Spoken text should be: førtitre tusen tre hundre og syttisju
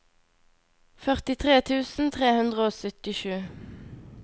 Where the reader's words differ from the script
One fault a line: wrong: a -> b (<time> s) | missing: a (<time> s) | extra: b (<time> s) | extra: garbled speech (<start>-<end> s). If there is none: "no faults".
no faults